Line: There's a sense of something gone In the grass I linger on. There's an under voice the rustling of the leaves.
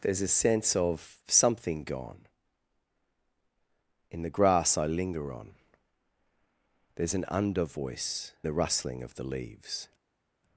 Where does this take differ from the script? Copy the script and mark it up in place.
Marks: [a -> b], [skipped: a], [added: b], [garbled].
There's a sense of something gone In the grass I linger on. There's an under voice the rustling of the leaves.